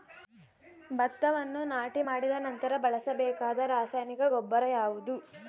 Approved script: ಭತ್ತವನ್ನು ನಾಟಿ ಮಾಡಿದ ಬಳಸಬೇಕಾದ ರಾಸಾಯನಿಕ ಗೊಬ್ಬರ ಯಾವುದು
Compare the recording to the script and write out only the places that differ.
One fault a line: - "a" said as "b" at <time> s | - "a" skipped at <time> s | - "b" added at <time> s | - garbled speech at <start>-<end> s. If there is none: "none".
- "ನಂತರ" added at 2.5 s